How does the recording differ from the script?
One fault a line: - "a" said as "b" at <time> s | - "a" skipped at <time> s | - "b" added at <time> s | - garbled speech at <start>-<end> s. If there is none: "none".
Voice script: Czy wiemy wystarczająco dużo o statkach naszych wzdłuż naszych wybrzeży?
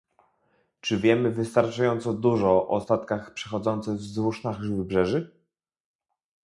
- "naszych" said as "przechodzących" at 3.3 s